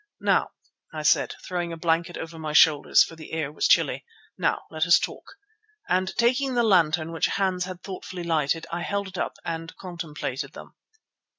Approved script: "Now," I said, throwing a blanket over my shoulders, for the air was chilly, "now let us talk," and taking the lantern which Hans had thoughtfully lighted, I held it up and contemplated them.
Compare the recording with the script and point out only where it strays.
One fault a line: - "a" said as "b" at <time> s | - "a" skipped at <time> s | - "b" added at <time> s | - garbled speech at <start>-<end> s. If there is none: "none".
none